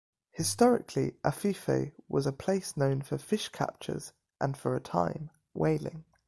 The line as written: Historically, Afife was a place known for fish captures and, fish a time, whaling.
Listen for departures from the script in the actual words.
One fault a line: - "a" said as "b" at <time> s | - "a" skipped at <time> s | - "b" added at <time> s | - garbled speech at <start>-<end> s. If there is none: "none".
- "fish" said as "for" at 4.6 s